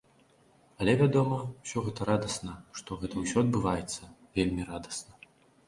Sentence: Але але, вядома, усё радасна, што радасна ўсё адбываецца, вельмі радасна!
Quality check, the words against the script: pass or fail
fail